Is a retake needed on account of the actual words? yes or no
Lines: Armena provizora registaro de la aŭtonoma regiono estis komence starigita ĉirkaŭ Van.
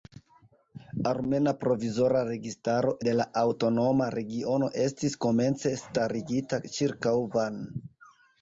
no